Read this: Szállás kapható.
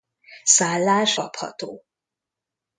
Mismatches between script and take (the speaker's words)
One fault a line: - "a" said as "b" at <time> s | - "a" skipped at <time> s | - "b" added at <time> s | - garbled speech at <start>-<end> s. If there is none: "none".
none